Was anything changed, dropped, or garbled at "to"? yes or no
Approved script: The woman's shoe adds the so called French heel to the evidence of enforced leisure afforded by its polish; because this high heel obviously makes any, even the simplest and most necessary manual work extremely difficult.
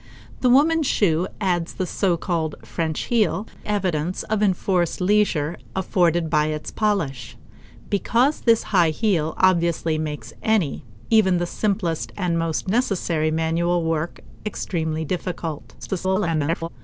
yes